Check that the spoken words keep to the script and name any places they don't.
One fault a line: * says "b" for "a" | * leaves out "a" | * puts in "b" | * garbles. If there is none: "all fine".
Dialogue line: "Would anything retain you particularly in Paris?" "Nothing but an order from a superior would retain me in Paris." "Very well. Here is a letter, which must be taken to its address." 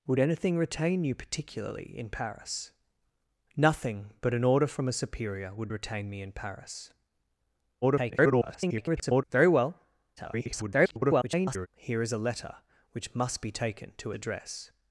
* garbles
* garbles
* leaves out "its"